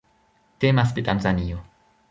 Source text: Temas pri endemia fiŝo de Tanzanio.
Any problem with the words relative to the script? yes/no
yes